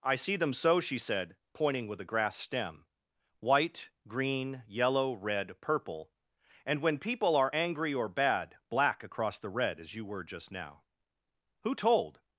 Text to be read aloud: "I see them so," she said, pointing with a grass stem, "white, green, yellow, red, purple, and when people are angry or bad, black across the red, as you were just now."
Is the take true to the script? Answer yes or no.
no